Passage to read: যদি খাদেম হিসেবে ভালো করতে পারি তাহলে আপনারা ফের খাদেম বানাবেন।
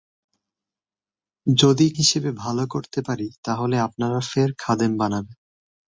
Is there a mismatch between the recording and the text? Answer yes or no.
yes